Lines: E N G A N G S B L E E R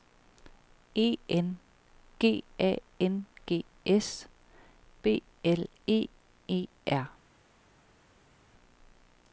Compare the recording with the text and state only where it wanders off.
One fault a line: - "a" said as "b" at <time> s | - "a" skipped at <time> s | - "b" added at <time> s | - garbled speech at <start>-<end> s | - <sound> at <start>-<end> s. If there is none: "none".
none